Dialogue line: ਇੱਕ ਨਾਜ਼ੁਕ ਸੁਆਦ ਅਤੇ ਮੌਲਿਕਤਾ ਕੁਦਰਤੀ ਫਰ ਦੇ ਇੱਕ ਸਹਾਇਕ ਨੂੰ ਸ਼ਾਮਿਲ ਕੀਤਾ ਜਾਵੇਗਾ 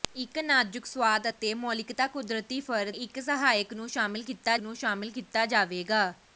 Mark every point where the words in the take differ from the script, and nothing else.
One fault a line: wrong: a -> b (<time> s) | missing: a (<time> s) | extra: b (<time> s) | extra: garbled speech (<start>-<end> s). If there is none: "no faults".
missing: ਦੇ (2.9 s)
extra: ਨੂੰ ਸ਼ਾਮਿਲ ਕੀਤਾ (4.6 s)